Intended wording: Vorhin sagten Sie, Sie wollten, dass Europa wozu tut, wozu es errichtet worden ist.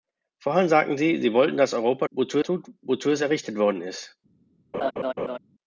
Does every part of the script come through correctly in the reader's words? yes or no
yes